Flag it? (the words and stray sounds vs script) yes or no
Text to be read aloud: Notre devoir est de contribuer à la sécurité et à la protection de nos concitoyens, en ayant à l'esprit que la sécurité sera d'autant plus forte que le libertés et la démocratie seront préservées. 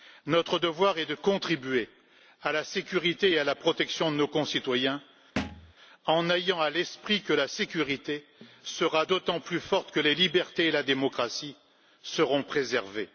yes